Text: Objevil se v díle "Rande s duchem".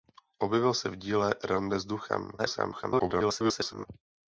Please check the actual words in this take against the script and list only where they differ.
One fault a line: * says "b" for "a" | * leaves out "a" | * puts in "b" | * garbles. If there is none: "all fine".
* garbles